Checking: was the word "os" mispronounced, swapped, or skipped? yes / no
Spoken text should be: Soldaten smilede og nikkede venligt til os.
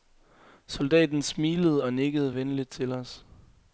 no